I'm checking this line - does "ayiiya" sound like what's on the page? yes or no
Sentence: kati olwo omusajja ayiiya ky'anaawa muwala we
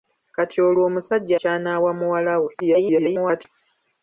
no